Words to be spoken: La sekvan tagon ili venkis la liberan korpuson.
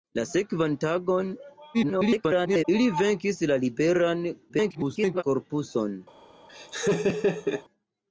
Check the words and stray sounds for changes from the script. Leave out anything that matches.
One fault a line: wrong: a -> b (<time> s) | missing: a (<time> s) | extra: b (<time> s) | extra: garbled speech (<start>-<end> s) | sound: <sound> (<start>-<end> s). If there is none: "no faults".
extra: garbled speech (1.7-2.6 s)
extra: garbled speech (4.5-5.2 s)
sound: laugh (6.5-7.6 s)